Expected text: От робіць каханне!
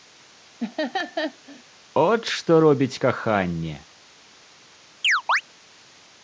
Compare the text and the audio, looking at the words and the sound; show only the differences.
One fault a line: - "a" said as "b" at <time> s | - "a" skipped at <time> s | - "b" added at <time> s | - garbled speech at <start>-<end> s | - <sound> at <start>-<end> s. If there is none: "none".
- laugh at 0.6-1.6 s
- "што" added at 2.4 s
- chirp at 5.0-5.4 s